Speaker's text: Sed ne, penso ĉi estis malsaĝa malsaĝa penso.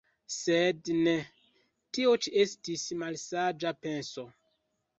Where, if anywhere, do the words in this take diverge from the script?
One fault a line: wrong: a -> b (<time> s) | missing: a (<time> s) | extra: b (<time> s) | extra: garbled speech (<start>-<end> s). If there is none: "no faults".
wrong: penso -> tio (2.0 s)
missing: malsaĝa (3.7 s)